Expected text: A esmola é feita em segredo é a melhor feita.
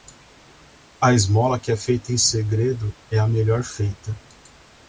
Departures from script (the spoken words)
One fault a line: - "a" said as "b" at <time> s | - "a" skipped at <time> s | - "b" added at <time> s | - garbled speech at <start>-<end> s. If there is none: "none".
- "que" added at 1.6 s